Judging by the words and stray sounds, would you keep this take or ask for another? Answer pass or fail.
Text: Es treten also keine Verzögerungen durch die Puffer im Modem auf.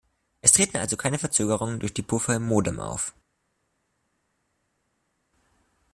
pass